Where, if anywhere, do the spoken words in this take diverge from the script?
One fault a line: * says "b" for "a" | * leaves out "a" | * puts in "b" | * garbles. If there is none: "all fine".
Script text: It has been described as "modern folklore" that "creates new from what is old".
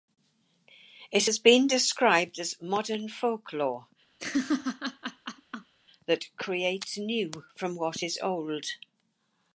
all fine